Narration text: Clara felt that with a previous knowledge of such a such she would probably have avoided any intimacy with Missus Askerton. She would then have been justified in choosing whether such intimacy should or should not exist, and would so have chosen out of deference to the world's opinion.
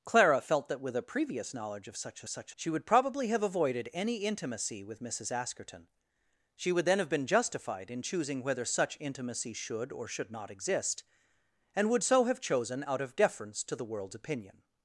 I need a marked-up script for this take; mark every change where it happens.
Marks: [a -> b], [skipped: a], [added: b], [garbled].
Clara felt that with a previous knowledge of such a such she would probably have avoided any intimacy with Missus Askerton. She would then have been justified in choosing whether such intimacy should or should not exist, and would so have chosen out of deference to the world's opinion.